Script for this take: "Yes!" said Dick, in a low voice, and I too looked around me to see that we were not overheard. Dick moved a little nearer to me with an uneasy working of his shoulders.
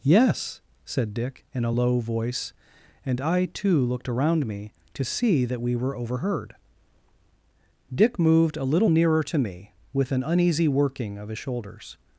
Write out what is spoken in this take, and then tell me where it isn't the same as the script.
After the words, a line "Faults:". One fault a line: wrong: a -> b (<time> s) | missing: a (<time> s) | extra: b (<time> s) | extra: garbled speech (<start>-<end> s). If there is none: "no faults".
"Yes!" said Dick, in a low voice, and I too looked around me to see that we were overheard. Dick moved a little nearer to me with an uneasy working of his shoulders.
Faults:
missing: not (5.9 s)